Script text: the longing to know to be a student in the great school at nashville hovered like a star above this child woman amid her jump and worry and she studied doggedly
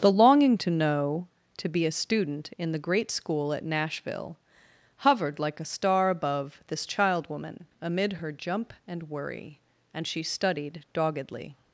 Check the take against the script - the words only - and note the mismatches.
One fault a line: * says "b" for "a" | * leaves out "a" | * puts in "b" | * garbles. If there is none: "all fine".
all fine